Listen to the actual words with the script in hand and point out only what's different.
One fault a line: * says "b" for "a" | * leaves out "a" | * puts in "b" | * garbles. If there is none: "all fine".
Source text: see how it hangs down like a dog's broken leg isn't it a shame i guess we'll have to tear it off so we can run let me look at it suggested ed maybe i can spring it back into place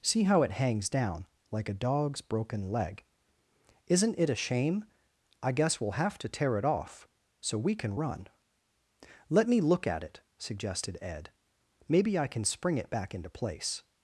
all fine